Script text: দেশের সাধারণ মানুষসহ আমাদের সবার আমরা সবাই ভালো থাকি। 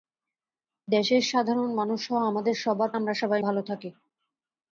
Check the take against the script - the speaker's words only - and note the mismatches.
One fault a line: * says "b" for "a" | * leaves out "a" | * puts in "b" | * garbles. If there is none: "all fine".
all fine